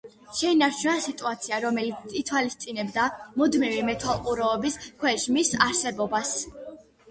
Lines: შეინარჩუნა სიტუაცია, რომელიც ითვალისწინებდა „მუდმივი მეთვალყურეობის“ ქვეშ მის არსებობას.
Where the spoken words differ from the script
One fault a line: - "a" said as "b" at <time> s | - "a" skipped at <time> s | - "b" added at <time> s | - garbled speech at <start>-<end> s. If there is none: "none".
none